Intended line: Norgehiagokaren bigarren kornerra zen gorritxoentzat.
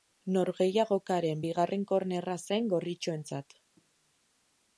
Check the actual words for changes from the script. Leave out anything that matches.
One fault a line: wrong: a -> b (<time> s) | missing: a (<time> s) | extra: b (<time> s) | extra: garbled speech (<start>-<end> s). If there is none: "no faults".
no faults